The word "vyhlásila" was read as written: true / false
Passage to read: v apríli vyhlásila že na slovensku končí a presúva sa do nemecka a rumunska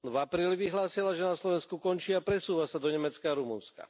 true